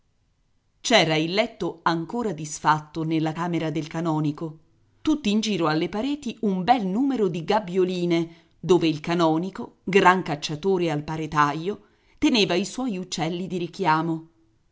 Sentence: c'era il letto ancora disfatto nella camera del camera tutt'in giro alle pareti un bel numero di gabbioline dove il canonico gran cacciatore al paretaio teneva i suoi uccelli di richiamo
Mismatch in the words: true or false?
true